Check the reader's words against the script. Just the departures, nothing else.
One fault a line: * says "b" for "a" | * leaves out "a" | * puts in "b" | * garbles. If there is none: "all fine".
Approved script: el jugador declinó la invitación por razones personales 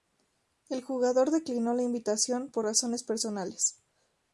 all fine